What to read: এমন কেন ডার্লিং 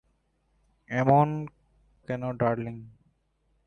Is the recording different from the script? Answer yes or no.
no